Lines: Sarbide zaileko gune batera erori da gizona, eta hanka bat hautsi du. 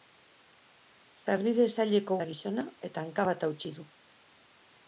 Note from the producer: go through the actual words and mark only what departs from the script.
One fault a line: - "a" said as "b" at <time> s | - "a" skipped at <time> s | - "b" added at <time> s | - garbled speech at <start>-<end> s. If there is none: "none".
- "gune batera erori" skipped at 2.2 s